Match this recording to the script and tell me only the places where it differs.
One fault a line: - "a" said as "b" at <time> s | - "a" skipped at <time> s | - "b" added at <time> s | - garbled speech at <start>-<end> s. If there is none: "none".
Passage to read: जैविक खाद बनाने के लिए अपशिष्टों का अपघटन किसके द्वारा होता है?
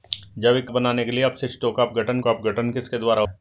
- "खाद" skipped at 0.7 s
- "का अपघटन" added at 2.2 s
- "होता" skipped at 3.2 s